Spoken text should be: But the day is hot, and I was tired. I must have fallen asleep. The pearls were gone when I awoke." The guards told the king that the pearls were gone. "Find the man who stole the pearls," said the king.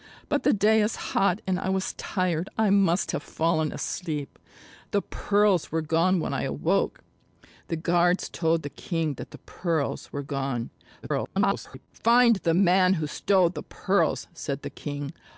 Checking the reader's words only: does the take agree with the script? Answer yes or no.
no